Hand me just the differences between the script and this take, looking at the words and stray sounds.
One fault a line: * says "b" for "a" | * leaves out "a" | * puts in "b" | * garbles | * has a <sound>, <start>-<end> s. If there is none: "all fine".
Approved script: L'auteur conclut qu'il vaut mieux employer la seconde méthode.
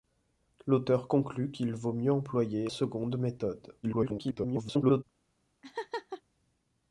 * leaves out "la"
* garbles
* has a laugh, 5.6-6.2 s